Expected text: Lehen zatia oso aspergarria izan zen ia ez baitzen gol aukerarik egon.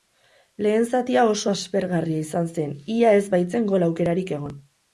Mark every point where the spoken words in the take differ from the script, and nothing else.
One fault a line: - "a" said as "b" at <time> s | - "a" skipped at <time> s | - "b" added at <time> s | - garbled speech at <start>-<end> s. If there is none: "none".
none